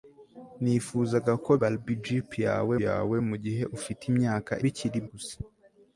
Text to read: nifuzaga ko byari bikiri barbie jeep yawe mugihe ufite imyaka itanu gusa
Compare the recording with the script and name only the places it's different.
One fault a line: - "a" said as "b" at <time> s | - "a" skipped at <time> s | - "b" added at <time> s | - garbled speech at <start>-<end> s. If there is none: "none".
- "byari bikiri" skipped at 1.5 s
- "yawe" added at 2.9 s
- "itanu" said as "bikiri" at 4.6 s